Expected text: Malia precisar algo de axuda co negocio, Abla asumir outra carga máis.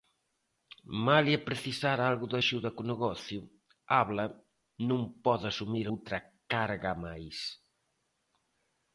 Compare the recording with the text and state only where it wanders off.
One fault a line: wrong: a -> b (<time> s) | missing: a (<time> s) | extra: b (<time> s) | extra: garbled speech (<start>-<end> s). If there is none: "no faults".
extra: non pode (4.9 s)